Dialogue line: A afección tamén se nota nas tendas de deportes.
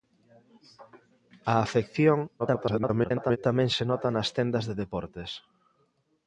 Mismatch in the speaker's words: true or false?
true